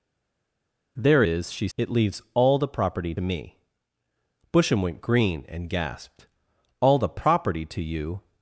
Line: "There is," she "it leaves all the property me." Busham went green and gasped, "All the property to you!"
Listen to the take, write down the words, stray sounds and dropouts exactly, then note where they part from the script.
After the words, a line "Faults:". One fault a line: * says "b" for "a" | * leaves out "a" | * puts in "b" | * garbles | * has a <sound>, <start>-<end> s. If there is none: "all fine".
"There is," she "it leaves all the property me." Busham went green and gasped, "All the property to you!"
Faults:
all fine